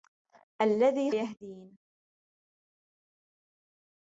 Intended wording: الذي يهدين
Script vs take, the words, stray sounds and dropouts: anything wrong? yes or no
no